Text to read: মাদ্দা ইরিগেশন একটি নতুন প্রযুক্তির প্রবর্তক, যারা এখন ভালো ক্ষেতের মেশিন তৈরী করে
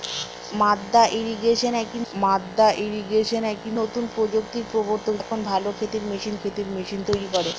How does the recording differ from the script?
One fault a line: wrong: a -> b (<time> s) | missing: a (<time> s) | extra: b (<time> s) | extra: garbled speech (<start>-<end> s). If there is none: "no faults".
extra: মাদ্দা ইরিগেশন একটি (2.1 s)
missing: যারা (5.1 s)
extra: ক্ষেতের মেশিন (6.4 s)